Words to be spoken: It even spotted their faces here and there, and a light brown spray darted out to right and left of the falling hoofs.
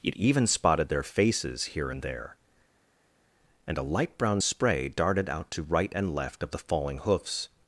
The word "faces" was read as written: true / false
true